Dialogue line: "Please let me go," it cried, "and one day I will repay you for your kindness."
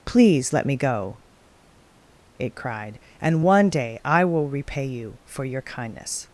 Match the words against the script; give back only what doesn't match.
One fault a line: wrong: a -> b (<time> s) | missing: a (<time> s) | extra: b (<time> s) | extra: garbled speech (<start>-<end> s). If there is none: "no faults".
no faults